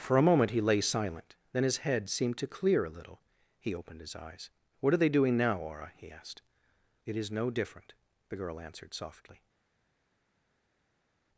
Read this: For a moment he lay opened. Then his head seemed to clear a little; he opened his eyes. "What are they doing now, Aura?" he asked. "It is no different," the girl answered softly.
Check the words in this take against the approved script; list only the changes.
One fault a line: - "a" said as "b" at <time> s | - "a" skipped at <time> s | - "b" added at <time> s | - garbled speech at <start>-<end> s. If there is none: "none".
- "opened" said as "silent" at 0.8 s